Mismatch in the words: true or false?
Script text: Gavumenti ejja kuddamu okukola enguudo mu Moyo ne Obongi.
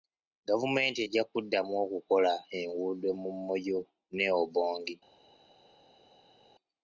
false